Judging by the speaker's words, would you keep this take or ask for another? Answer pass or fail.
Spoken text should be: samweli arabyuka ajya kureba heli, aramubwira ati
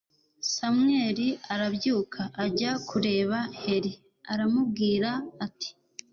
pass